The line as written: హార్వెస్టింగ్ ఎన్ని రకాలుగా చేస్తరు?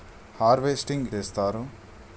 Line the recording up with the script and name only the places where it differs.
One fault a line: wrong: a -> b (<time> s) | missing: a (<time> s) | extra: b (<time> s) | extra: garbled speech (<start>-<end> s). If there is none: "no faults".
missing: ఎన్ని రకాలుగా (1.1 s)